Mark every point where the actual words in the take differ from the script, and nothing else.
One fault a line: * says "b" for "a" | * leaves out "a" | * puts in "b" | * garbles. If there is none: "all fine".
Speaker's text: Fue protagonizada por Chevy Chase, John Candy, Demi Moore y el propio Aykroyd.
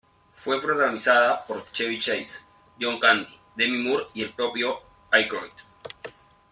all fine